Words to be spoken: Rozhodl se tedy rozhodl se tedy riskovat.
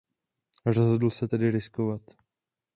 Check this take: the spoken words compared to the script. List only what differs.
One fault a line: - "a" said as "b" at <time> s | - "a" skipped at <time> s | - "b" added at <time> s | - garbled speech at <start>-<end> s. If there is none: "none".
- "rozhodl se tedy" skipped at 1.5 s